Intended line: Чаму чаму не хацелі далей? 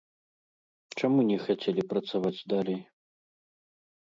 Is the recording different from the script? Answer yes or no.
yes